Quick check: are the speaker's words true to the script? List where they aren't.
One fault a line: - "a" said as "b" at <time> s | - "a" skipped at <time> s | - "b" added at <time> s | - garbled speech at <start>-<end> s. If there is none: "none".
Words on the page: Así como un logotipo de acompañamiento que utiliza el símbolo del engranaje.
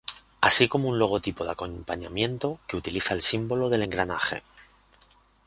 none